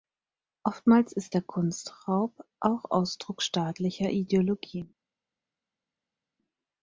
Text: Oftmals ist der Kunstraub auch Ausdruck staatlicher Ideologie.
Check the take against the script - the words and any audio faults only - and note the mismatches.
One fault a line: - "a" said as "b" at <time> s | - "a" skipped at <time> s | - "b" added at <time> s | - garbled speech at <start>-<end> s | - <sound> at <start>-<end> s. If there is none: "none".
none